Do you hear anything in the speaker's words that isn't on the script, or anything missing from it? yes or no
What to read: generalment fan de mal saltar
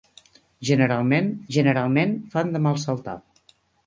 yes